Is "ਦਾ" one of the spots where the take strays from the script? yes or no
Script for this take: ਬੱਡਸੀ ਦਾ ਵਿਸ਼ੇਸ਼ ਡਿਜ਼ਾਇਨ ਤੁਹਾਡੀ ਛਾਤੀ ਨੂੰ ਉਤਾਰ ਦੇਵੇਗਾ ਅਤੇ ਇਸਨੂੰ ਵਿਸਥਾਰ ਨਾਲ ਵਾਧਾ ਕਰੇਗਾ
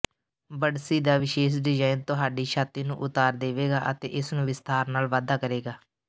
no